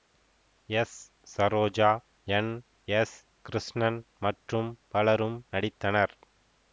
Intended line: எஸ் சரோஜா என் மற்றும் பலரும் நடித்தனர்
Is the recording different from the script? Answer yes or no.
yes